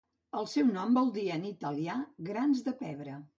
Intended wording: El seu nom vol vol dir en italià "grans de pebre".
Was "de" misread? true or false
false